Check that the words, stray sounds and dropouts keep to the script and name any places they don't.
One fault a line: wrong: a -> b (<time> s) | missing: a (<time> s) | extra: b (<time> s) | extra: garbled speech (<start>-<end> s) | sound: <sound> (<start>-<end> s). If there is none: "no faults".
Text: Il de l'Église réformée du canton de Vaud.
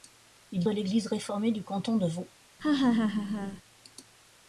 sound: laugh (2.6-3.6 s)